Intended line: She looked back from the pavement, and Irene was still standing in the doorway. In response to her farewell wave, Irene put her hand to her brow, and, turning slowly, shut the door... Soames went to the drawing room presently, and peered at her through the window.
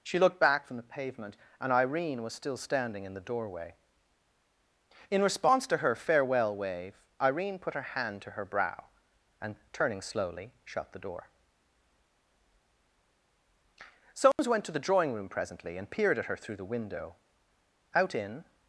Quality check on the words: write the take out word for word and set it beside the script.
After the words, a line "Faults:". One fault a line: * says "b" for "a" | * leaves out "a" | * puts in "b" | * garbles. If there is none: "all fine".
She looked back from the pavement, and Irene was still standing in the doorway. In response to her farewell wave, Irene put her hand to her brow, and, turning slowly, shut the door... Soames went to the drawing room presently, and peered at her through the window. Out in
Faults:
* puts in "Out in"